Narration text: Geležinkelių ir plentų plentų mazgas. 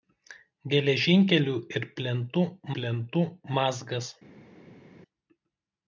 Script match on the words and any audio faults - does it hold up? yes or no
yes